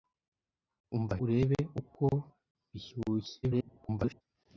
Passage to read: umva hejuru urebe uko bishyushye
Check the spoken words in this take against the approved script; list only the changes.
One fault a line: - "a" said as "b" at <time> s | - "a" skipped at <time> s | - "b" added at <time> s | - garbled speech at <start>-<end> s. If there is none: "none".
- "hejuru" skipped at 1.1 s
- garbled speech at 3.4-4.2 s